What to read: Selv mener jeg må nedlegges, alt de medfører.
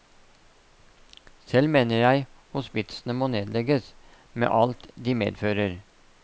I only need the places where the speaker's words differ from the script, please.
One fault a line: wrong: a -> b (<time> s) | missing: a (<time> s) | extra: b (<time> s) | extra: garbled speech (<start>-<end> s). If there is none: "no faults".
extra: hospitsene (2.5 s)
extra: med (4.3 s)